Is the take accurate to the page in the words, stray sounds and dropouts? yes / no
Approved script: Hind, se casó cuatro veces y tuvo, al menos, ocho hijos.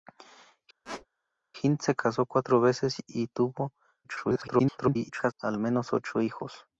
no